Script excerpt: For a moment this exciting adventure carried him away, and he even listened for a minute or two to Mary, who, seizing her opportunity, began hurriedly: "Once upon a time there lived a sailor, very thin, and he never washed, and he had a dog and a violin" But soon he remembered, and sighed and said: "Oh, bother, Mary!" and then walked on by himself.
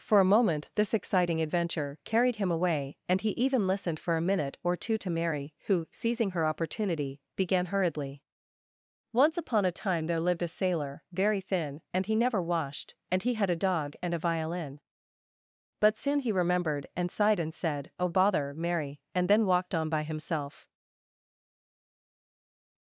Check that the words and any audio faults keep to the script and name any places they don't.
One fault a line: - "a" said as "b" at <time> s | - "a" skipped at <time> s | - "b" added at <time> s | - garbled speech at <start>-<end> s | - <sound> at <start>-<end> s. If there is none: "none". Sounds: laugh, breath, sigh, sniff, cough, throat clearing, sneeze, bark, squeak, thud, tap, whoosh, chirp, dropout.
none